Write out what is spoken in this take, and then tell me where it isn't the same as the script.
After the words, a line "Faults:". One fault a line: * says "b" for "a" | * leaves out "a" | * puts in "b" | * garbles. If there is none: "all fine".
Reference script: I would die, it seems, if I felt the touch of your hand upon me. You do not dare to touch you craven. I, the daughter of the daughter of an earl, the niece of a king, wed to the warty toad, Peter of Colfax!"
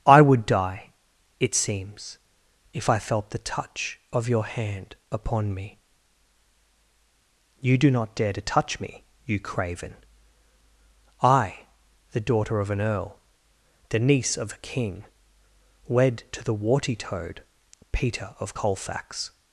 I would die, it seems, if I felt the touch of your hand upon me. You do not dare to touch me, you craven. I, the daughter of an earl, the niece of a king, wed to the warty toad, Peter of Colfax!"
Faults:
* puts in "me"
* leaves out "the daughter of"